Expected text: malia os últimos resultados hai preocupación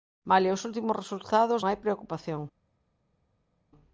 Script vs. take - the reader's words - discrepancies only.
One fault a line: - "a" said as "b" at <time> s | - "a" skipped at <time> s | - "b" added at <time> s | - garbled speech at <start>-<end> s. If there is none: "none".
none